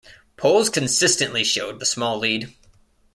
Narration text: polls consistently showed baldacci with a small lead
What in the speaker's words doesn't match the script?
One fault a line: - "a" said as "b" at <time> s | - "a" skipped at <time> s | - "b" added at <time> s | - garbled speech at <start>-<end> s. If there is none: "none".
- "baldacci with" skipped at 1.8 s